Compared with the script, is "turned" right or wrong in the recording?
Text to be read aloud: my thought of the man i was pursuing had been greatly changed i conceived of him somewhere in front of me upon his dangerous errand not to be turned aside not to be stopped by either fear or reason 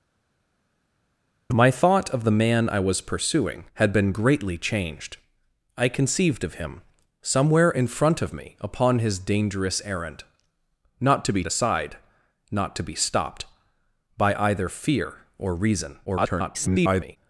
wrong